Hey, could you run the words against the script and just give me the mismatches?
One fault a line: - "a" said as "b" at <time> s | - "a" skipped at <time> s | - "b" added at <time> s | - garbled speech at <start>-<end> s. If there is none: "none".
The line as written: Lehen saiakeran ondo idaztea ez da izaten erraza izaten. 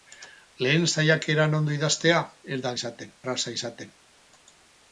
none